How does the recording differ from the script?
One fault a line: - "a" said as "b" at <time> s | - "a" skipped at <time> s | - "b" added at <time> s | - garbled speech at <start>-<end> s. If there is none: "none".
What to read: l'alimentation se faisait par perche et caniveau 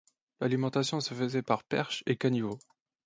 none